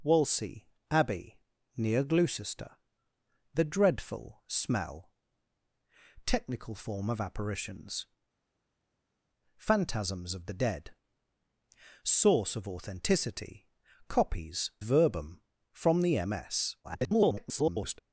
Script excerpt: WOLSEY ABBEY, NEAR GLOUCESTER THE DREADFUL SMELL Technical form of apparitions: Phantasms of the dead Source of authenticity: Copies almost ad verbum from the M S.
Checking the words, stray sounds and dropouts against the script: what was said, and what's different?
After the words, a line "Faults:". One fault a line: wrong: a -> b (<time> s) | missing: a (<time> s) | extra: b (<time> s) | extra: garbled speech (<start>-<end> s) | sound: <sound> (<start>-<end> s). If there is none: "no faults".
WOLSEY ABBEY, NEAR GLOUCESTER THE DREADFUL SMELL Technical form of apparitions: Phantasms of the dead Source of authenticity: Copies verbum from the M S. [garbled]
Faults:
missing: almost ad (14.7 s)
extra: garbled speech (16.8-18.0 s)